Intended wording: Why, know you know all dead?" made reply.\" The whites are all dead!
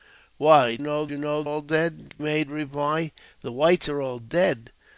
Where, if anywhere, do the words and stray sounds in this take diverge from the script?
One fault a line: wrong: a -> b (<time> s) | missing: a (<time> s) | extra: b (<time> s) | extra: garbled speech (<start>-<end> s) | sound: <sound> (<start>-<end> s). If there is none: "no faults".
no faults